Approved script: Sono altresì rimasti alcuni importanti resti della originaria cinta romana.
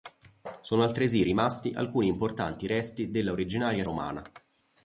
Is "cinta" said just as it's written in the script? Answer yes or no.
no